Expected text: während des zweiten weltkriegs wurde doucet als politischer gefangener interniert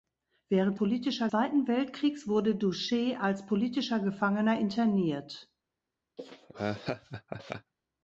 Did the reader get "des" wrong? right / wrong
wrong